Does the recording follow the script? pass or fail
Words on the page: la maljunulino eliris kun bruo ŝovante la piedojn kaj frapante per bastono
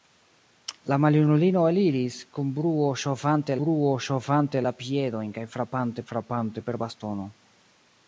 fail